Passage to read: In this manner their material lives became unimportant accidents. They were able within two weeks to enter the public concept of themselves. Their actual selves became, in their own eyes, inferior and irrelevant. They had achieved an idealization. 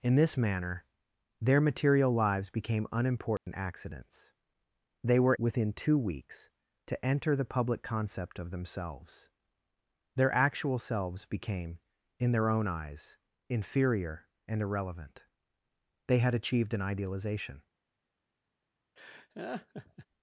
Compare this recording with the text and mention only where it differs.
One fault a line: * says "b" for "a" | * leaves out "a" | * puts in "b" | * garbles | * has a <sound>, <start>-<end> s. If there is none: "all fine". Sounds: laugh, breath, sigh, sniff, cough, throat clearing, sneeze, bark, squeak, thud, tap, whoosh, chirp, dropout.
* has a dropout, 3.4-3.5 s
* leaves out "able"
* has a laugh, 19.0-20.1 s